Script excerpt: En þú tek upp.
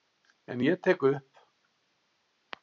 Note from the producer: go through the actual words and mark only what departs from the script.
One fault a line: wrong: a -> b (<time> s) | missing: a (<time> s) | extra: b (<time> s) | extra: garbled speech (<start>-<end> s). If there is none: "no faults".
wrong: þú -> ég (0.6 s)